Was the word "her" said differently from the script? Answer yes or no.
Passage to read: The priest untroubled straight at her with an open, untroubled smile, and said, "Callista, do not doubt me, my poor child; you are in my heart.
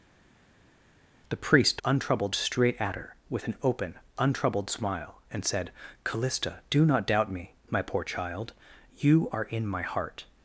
no